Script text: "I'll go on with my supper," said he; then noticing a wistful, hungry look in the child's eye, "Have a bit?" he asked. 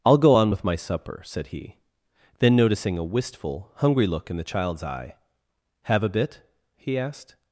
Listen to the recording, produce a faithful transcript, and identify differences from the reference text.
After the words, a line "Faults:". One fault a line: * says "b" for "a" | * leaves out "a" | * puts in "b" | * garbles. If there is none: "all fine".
"I'll go on with my supper," said he; then noticing a wistful, hungry look in the child's eye, "Have a bit?" he asked.
Faults:
all fine